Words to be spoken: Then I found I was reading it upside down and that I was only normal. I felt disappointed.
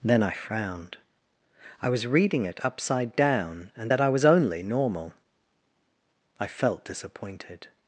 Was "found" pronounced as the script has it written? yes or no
no